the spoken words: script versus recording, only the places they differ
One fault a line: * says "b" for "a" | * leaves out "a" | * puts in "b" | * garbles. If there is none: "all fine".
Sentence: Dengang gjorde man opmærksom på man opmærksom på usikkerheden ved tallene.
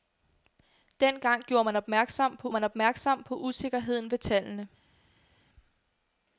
all fine